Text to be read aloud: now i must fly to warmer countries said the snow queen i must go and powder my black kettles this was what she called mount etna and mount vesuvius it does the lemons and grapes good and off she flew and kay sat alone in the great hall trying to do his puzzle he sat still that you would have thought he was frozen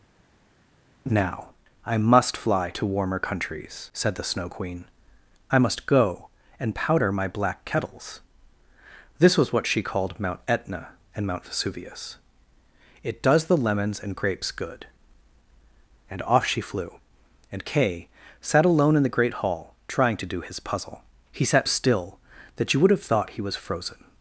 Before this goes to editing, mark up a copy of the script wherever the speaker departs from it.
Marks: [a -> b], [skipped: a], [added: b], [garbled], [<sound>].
now i must fly to warmer countries said the snow queen i must go and powder my black kettles this was what she called mount etna and mount vesuvius it does the lemons and grapes good and off she flew and kay sat alone in the great hall trying to do his puzzle he sat still that you would have thought he was frozen